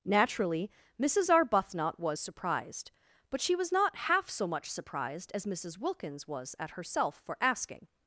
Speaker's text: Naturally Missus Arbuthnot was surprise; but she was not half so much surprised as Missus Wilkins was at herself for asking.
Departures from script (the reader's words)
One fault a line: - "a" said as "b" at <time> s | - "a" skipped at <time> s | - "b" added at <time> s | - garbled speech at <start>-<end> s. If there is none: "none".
- "surprise" said as "surprised" at 2.2 s